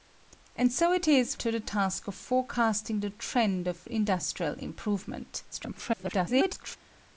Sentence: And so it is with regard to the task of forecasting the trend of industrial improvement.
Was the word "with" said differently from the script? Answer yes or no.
yes